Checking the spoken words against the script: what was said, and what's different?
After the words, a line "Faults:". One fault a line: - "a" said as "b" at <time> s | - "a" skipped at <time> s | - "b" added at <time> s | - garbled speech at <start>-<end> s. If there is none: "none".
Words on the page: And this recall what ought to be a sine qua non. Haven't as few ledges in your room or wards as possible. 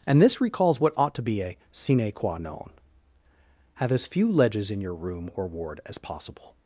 And this recalls what ought to be a sine qua non. Have as few ledges in your room or ward as possible.
Faults:
- "recall" said as "recalls" at 0.4 s
- "Haven't" said as "Have" at 3.8 s
- "wards" said as "ward" at 5.5 s